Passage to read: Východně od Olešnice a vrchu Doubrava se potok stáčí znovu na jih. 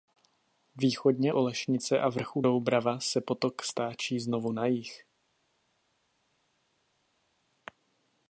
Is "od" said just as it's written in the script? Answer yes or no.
no